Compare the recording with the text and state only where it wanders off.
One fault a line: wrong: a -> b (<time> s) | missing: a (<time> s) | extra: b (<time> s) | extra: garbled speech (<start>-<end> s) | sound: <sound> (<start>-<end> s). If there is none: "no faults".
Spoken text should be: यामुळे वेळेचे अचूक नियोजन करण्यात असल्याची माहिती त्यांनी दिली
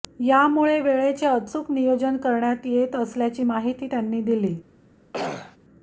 extra: येत (2.6 s)
sound: throat clearing (5.1-5.6 s)